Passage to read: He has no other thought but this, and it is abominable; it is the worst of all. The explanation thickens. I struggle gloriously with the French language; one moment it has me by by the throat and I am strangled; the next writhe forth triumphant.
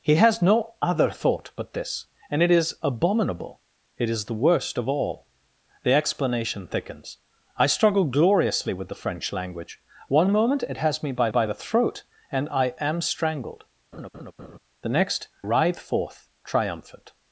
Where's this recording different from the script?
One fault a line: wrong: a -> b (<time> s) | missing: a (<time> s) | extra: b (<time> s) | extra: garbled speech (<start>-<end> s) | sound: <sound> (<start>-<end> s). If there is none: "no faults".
sound: laugh (13.9-14.6 s)